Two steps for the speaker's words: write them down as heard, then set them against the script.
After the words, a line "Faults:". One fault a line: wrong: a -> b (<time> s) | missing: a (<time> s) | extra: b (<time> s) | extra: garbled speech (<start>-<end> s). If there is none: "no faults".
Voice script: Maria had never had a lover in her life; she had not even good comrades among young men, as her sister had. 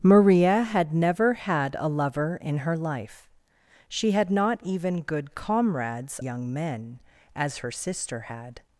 Maria had never had a lover in her life; she had not even good comrades young men, as her sister had.
Faults:
missing: among (6.2 s)